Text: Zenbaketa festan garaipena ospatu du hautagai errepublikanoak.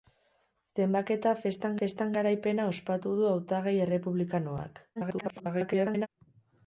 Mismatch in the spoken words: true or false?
true